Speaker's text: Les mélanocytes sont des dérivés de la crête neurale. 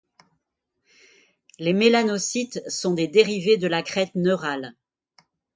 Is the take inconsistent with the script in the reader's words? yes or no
no